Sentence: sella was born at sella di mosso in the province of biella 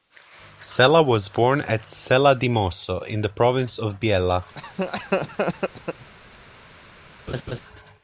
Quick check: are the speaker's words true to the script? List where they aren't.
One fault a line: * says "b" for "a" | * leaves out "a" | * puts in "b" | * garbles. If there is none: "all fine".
all fine